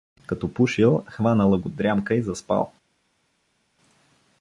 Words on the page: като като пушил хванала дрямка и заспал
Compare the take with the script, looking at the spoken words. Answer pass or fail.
fail